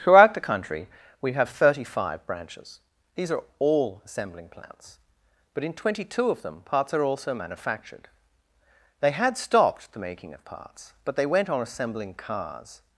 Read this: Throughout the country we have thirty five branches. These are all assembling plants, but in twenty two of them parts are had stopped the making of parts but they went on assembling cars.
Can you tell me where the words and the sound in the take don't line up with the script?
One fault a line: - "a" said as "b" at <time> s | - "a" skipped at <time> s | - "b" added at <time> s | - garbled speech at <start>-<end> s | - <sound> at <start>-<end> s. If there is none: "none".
- "also manufactured They" added at 7.0 s